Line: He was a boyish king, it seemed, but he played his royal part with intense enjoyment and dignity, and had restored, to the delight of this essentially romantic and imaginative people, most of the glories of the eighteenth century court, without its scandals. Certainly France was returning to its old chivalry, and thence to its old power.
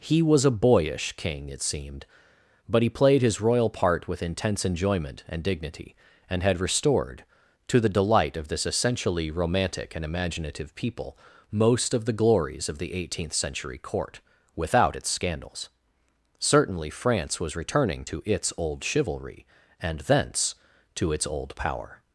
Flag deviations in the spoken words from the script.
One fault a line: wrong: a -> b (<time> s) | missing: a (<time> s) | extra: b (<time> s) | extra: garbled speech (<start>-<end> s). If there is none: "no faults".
no faults